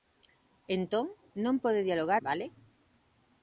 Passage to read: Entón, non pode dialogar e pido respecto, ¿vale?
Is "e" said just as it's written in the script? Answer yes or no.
no